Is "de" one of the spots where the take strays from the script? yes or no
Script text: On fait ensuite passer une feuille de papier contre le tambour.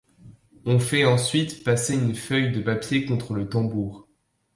no